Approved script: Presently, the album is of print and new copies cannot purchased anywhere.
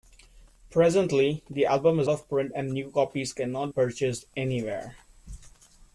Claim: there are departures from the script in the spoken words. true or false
false